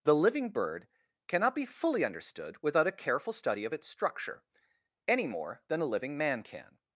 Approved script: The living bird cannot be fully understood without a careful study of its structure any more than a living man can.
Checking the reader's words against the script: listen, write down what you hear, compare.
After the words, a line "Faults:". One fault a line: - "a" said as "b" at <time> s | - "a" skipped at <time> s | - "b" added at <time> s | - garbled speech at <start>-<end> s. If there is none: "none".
The living bird cannot be fully understood without a careful study of its structure any more than a living man can.
Faults:
none